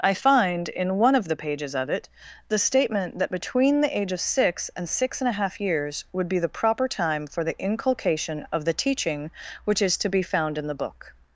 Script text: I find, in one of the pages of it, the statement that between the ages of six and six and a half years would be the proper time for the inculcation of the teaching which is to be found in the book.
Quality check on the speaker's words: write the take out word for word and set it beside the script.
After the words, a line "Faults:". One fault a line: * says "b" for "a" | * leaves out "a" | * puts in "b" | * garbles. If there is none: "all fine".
I find, in one of the pages of it, the statement that between the age of six and six and a half years would be the proper time for the inculcation of the teaching which is to be found in the book.
Faults:
* says "age" for "ages"